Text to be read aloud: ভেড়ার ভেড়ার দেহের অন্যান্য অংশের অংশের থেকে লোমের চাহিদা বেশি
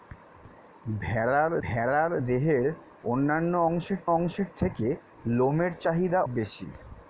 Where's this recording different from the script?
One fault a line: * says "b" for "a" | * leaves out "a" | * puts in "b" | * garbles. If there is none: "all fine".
all fine